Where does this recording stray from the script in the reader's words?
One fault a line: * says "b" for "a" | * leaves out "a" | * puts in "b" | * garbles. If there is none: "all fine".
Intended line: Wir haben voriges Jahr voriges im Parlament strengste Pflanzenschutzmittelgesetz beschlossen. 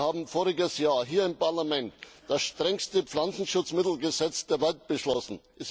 * says "hier" for "voriges"
* puts in "das"
* puts in "der Welt"